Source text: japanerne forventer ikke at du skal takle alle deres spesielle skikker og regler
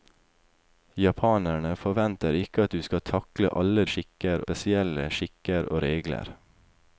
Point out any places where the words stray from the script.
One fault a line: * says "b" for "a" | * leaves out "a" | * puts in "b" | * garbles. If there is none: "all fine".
* says "skikker" for "deres"